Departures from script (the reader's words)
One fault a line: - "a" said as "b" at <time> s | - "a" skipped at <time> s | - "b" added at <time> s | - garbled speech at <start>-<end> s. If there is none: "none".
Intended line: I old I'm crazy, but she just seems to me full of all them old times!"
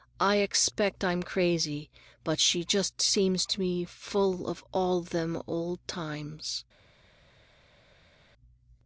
- "old" said as "expect" at 0.4 s